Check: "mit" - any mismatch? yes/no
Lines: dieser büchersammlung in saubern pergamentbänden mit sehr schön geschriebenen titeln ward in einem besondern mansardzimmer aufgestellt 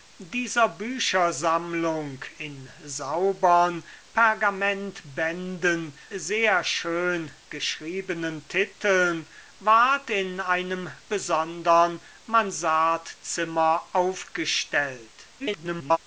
yes